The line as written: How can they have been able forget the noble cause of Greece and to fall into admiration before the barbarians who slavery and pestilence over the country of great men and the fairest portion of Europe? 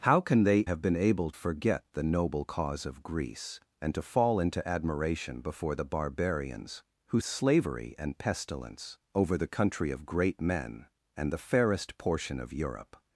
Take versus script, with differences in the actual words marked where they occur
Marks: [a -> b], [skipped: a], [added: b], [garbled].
How can they have been able forget the noble cause of Greece and to fall into admiration before the barbarians who slavery and pestilence over the country of great men and the fairest portion of Europe?